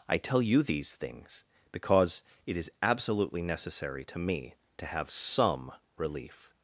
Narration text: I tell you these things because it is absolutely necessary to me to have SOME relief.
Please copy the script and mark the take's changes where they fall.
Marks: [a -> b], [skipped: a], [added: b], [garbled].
I tell you these things because it is absolutely necessary to me to have SOME relief.